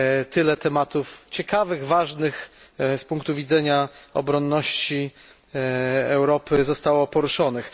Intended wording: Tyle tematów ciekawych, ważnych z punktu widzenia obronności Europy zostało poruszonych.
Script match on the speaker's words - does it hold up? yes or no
yes